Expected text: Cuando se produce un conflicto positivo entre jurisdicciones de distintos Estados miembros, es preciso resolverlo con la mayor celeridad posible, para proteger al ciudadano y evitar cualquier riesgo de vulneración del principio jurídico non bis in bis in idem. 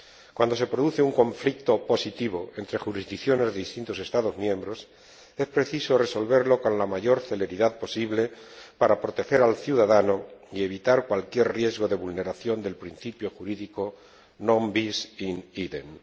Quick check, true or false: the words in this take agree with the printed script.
false